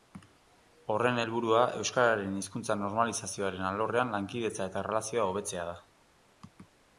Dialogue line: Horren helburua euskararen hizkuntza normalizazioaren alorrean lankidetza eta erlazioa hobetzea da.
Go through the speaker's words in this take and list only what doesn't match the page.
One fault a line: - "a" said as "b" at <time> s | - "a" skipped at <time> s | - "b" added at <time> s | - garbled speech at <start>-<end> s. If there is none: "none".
none